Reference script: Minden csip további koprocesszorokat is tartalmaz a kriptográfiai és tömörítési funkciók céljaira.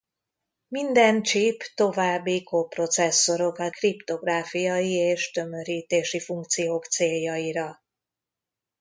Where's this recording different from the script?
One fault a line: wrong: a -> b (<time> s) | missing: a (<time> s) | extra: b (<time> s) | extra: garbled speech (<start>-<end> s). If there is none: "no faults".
missing: is tartalmaz a (3.8 s)